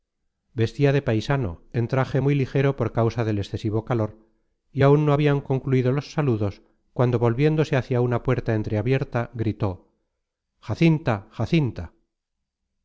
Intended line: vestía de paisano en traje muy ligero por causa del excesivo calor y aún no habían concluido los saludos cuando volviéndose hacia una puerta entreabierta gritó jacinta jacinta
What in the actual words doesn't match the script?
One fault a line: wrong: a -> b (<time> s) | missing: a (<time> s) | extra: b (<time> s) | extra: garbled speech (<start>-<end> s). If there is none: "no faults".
no faults